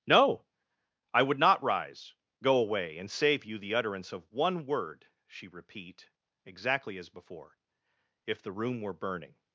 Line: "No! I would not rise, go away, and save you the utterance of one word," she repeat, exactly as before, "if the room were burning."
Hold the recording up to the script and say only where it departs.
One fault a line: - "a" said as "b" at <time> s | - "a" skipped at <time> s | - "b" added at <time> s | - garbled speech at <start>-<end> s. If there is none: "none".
none